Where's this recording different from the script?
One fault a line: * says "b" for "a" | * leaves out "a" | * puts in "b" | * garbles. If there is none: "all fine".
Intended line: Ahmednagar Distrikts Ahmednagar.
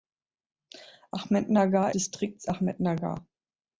all fine